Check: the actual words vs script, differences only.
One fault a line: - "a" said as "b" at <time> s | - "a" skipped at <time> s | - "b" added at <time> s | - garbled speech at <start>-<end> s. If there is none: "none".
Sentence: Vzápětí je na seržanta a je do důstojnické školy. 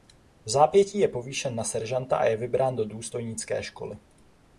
- "povýšen" added at 1.1 s
- "vybrán" added at 2.4 s